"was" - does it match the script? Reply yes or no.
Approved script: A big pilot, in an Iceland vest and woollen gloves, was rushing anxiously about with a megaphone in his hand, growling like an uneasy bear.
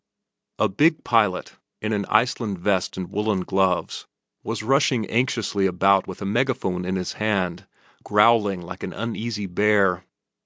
yes